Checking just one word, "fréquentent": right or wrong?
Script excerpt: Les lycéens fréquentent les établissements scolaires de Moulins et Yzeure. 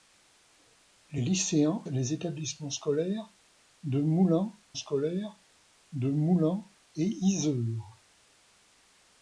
wrong